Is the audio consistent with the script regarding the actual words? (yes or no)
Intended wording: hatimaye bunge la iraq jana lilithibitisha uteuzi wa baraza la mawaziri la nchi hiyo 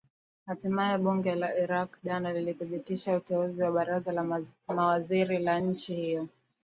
yes